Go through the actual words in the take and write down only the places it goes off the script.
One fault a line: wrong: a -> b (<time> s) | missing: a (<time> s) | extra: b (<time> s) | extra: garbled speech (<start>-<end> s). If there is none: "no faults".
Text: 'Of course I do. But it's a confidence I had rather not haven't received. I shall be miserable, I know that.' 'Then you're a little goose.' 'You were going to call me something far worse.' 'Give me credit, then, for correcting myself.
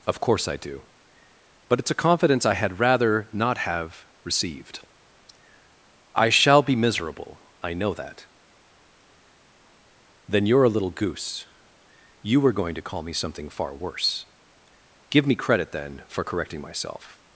wrong: haven't -> have (3.6 s)